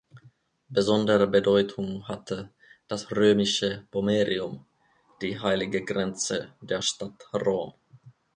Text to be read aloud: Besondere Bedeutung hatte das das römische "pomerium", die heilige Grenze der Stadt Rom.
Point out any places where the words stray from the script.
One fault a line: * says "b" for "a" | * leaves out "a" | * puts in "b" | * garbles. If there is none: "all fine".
* leaves out "das"